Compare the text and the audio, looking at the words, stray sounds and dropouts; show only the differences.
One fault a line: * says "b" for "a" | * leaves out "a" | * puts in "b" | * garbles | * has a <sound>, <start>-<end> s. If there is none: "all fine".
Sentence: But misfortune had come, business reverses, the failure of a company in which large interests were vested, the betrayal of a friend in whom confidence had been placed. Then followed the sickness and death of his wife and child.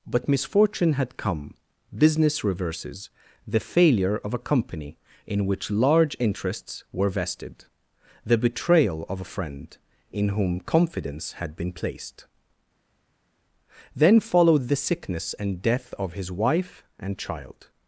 all fine